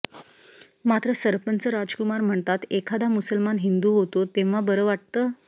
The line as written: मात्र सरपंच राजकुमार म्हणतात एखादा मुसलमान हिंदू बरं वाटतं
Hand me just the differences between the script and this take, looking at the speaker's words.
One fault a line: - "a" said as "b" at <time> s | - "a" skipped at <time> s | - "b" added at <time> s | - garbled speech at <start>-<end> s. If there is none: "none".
- "होतो तेव्हा" added at 3.9 s